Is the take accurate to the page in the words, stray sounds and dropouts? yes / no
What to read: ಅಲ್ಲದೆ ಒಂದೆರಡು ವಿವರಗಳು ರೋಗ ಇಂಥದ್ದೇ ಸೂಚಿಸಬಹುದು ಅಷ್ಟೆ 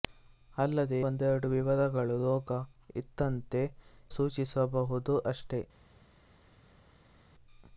yes